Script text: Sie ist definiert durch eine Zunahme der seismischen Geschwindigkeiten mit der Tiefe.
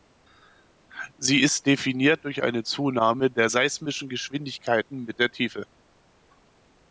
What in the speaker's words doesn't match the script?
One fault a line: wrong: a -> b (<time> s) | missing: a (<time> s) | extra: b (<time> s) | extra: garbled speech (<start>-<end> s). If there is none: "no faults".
no faults